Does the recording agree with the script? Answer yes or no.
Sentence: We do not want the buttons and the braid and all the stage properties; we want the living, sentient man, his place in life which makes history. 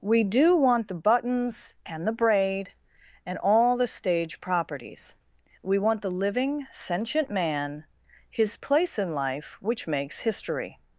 no